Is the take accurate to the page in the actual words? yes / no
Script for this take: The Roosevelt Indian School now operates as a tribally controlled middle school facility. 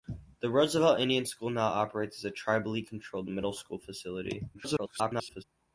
no